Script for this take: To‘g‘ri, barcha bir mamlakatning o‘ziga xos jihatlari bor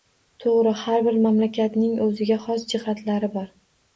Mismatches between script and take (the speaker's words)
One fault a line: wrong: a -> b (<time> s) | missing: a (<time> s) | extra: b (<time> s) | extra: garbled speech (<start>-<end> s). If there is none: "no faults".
wrong: barcha -> har (0.8 s)